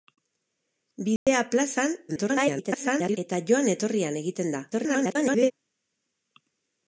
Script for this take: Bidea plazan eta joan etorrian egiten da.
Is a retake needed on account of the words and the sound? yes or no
yes